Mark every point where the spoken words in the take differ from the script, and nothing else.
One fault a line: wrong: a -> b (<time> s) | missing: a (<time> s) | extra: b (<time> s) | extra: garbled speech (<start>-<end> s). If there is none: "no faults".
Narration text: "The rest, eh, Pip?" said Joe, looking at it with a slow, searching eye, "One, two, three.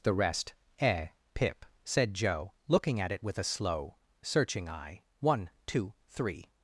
no faults